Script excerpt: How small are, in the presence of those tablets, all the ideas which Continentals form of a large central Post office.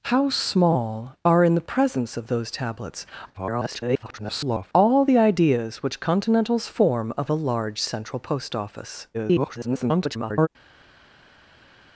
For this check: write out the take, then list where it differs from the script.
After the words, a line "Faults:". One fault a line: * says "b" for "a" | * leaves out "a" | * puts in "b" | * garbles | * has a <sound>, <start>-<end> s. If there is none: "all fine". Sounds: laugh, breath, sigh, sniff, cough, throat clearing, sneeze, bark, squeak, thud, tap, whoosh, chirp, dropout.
How small are, in the presence of those tablets, [garbled] all the ideas which Continentals form of a large central Post office. [garbled]
Faults:
* garbles
* garbles